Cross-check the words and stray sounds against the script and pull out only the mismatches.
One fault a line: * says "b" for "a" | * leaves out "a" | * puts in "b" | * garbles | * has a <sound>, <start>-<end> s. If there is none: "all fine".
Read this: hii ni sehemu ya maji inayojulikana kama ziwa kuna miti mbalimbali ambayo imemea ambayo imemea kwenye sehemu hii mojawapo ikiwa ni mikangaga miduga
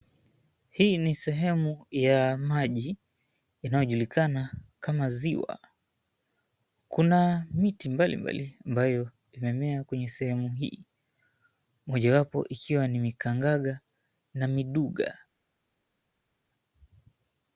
* leaves out "ambayo imemea"
* puts in "na"